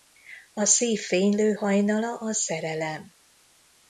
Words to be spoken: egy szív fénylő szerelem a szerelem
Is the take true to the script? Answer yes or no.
no